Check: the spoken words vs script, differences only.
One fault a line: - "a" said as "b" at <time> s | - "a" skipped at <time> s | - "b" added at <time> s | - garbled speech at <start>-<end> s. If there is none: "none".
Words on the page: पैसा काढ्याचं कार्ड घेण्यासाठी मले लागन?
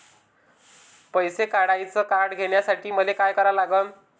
- "काय करा" added at 3.1 s